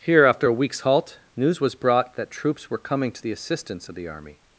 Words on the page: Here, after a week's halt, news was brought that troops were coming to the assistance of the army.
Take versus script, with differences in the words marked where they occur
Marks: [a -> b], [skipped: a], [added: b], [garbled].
Here, after a week's halt, news was brought that troops were coming to the assistance of the army.